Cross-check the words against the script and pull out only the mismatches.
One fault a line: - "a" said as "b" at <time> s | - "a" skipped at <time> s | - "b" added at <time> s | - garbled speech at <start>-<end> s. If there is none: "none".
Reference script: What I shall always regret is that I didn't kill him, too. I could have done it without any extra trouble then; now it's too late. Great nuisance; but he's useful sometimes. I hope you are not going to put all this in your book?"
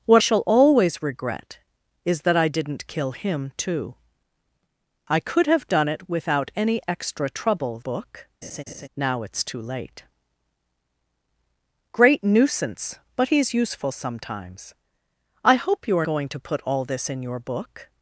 - "I" skipped at 0.2 s
- "then" said as "book" at 7.8 s
- "not" skipped at 16.1 s